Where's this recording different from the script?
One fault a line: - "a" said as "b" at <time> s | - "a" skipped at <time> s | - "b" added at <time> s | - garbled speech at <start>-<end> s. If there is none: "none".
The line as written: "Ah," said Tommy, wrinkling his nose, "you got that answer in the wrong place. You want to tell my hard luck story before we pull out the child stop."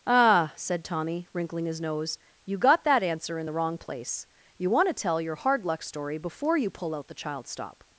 - "my" said as "your" at 5.2 s
- "we" said as "you" at 6.6 s